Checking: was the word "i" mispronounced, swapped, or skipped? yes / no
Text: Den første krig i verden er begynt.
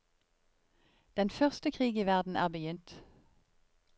no